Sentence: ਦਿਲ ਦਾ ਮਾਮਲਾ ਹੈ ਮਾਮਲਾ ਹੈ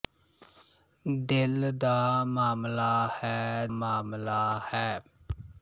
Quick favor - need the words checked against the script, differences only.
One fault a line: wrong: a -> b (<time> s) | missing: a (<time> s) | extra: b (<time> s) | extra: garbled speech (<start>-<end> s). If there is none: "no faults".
no faults